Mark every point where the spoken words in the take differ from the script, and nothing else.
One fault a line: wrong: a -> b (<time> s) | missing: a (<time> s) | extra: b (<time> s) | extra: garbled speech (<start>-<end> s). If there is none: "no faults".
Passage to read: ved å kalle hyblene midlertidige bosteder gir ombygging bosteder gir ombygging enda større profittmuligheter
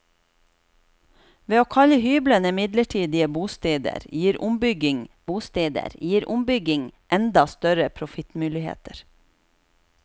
no faults